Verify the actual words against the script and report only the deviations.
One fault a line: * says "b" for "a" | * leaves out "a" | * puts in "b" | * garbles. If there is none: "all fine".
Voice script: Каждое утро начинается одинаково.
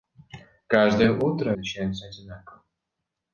all fine